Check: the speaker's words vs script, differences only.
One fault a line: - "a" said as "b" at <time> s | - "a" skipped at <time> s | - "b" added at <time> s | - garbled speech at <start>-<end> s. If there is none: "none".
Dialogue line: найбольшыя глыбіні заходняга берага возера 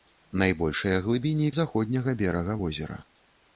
none